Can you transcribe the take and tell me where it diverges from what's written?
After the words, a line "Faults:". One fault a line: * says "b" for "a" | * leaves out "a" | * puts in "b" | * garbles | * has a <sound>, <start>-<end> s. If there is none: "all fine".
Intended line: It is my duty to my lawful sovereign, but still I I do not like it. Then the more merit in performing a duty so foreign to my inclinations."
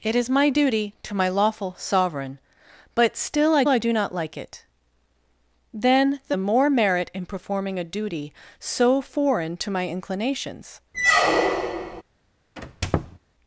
It is my duty to my lawful sovereign, but still I I do not like it. Then the more merit in performing a duty so foreign to my inclinations."
Faults:
* has a squeak, 10.9-12.0 s
* has a squeak, 12.6-13.2 s